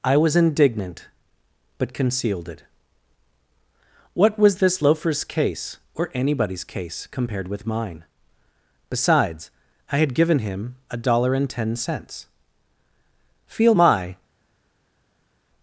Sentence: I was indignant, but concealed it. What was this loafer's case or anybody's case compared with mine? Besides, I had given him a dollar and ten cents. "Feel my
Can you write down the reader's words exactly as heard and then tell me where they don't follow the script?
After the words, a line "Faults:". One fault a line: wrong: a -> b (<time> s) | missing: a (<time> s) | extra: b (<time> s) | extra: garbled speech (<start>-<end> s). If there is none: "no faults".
I was indignant, but concealed it. What was this loafer's case or anybody's case compared with mine? Besides, I had given him a dollar and ten cents. "Feel my
Faults:
no faults